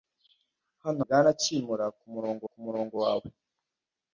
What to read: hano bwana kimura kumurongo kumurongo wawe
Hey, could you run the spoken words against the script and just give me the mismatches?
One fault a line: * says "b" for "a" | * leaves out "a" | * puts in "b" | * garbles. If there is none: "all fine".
all fine